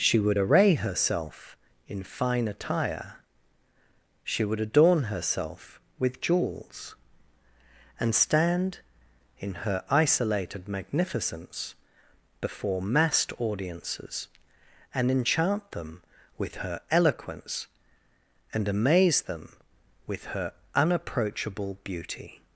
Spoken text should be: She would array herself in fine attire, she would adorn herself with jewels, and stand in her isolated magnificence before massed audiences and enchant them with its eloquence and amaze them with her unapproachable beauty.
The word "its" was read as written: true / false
false